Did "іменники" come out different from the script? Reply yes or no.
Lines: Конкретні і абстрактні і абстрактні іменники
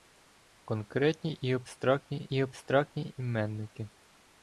no